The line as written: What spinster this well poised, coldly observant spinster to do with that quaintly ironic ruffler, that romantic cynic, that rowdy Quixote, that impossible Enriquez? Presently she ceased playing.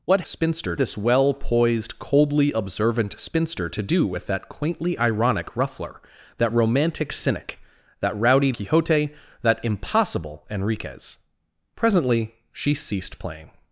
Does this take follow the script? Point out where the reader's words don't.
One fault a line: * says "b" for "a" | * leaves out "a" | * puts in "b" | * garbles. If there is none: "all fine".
all fine